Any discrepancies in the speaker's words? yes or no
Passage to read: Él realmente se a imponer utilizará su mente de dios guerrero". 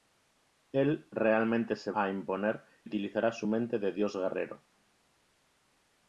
no